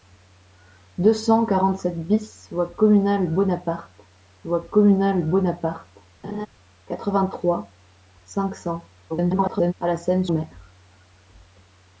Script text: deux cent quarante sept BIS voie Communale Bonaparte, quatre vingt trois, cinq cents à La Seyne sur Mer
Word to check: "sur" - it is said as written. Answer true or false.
false